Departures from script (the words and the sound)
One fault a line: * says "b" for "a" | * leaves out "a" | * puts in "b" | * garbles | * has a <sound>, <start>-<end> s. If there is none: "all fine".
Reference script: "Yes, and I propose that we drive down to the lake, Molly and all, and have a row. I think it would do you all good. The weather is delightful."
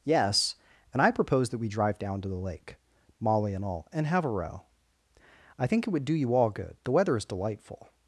all fine